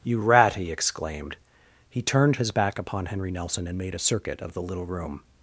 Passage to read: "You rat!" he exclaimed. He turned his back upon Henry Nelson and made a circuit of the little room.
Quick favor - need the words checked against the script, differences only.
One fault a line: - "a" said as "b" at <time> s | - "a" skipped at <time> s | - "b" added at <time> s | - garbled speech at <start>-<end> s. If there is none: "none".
none